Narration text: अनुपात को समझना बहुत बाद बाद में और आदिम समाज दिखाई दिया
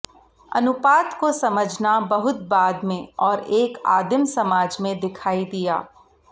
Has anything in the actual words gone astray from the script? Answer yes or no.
yes